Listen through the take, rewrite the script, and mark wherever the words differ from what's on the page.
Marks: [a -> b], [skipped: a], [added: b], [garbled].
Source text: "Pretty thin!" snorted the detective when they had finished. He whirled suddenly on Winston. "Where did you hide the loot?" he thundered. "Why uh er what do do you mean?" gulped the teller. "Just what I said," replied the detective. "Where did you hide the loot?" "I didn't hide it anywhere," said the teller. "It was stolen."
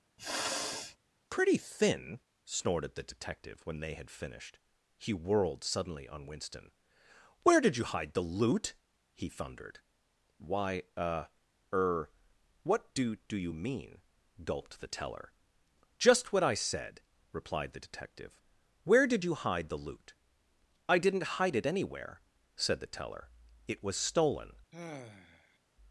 "Pretty thin!" snorted the detective when they had finished. He whirled suddenly on Winston. "Where did you hide the loot?" he thundered. "Why uh er what do do you mean?" gulped the teller. "Just what I said," replied the detective. "Where did you hide the loot?" "I didn't hide it anywhere," said the teller. "It was stolen."